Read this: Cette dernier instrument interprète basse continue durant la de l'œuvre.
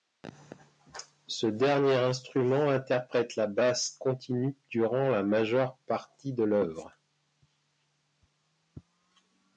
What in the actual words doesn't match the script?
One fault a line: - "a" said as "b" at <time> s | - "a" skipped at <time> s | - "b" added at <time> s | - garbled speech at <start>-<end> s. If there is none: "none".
- "Cette" said as "Ce" at 1.3 s
- "la" added at 3.4 s
- "majeure partie" added at 5.2 s